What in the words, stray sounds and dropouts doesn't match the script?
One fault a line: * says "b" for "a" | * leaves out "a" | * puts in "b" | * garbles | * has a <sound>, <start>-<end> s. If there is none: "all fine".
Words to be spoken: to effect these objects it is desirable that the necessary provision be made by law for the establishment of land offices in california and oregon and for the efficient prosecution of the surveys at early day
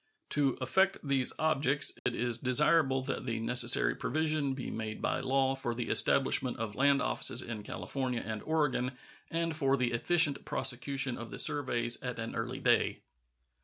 * has a dropout, 2.0-2.1 s
* puts in "an"